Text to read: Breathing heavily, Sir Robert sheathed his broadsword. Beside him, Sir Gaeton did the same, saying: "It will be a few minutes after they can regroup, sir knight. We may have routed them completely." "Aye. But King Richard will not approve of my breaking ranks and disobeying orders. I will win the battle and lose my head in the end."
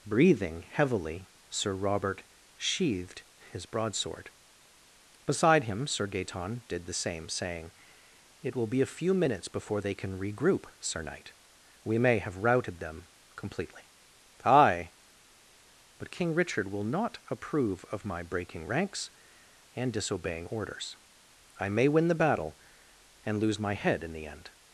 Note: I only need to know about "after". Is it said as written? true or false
false